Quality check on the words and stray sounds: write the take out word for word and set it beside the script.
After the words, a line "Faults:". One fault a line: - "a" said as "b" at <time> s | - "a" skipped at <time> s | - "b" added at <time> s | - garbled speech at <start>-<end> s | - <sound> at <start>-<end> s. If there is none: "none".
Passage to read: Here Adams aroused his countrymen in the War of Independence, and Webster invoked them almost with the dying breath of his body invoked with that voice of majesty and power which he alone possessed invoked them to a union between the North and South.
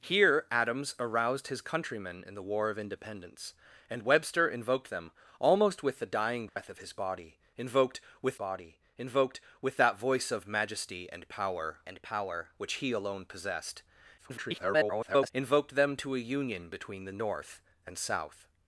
Here Adams aroused his countrymen in the War of Independence, and Webster invoked them almost with the dying breath of his body invoked with body invoked with that voice of majesty and power and power which he alone possessed [garbled] invoked them to a union between the North and South.
Faults:
- dropout at 6.5-6.6 s
- "body invoked with" added at 8.3 s
- "and power" added at 11.9 s
- garbled speech at 14.2-15.3 s